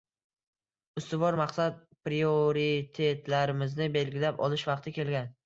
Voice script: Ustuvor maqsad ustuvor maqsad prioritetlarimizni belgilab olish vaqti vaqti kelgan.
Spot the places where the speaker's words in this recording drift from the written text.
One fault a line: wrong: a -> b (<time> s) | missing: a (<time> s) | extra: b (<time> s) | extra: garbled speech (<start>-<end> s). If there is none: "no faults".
missing: ustuvor maqsad (1.8 s)
missing: vaqti (5.0 s)